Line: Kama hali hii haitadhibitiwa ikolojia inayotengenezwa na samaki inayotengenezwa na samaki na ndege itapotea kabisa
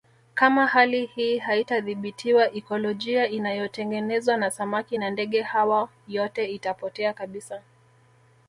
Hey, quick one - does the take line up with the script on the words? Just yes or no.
no